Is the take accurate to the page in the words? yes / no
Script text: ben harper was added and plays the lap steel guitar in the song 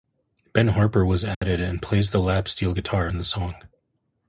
yes